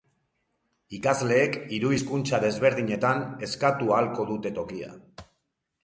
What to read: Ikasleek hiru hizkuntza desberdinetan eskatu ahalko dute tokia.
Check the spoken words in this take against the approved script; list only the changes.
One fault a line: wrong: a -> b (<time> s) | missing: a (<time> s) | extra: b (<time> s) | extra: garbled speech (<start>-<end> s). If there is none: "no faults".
no faults